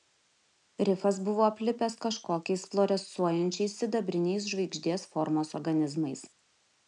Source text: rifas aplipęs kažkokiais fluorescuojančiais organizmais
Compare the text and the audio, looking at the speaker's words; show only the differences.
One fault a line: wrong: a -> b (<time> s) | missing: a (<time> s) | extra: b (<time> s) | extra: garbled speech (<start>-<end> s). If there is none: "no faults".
extra: buvo (1.3 s)
extra: sidabriniais žvaigždės formos (3.8 s)